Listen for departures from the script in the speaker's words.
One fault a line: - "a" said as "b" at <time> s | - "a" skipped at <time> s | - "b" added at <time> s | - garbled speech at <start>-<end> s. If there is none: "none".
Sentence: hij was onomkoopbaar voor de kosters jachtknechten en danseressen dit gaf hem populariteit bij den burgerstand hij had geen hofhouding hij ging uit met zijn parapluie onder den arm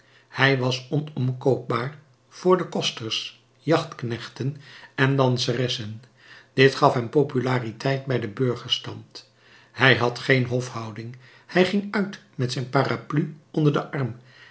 none